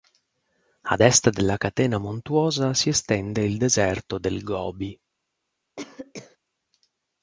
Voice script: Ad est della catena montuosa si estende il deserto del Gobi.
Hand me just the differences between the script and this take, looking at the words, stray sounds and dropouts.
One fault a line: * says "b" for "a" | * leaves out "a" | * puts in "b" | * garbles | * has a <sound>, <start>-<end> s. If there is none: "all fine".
* has a cough, 5.8-6.4 s